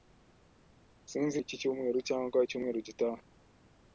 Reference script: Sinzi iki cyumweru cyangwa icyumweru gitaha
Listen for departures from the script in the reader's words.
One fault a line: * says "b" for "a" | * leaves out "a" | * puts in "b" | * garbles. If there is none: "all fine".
all fine